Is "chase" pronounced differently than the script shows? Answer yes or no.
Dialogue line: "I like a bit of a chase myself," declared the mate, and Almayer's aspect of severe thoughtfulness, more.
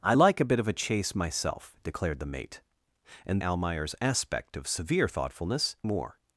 no